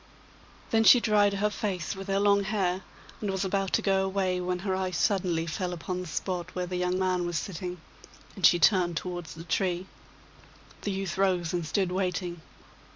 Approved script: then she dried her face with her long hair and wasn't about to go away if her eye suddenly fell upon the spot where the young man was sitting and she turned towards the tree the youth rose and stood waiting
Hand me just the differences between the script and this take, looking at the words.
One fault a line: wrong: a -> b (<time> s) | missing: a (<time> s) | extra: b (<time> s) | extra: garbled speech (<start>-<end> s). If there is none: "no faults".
wrong: wasn't -> was (3.3 s)
wrong: if -> when (4.4 s)